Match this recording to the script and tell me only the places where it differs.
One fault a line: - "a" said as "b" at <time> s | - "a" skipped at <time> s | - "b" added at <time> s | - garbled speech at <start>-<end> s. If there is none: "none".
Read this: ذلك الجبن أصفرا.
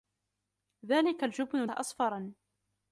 none